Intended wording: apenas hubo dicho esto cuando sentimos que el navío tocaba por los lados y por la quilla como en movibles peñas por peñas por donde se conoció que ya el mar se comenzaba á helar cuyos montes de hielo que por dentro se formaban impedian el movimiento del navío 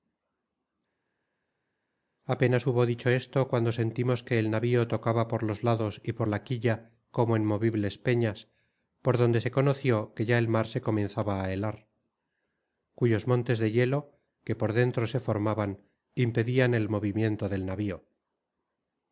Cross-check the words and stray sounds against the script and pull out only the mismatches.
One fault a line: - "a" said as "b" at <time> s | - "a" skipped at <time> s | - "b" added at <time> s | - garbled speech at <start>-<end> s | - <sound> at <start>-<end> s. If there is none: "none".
- "peñas por" skipped at 9.2 s